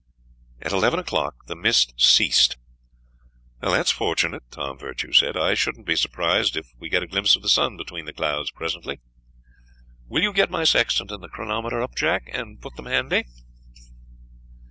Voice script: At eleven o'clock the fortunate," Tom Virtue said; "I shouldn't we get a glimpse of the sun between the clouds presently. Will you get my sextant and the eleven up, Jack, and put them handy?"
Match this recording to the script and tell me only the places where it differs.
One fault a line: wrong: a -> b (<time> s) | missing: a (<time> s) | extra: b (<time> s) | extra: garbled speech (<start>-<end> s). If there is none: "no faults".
extra: mist ceased That's (1.6 s)
extra: be surprised if (5.9 s)
wrong: eleven -> chronometer (11.3 s)